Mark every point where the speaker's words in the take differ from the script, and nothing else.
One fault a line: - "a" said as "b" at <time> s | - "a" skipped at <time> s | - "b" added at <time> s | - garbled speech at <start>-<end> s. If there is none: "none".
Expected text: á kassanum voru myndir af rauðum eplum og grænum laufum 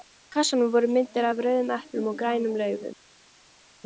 none